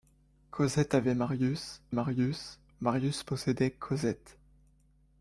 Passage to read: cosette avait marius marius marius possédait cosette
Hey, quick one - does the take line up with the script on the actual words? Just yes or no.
yes